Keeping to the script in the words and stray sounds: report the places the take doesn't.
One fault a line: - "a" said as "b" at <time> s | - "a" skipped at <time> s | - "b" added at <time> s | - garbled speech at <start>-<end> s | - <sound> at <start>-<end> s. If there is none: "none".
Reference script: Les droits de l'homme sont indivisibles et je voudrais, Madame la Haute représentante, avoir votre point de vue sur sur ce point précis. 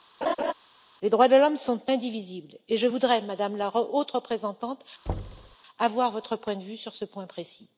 - laugh at 0.2-0.5 s
- thud at 5.1-5.6 s
- "sur" skipped at 6.9 s